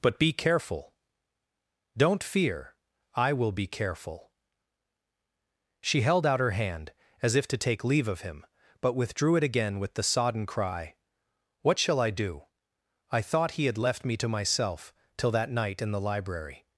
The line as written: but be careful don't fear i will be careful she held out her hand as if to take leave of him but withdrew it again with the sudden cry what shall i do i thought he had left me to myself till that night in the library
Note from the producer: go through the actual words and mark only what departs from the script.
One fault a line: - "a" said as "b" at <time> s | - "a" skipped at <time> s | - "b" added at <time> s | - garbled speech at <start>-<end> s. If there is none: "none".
- "sudden" said as "sodden" at 10.0 s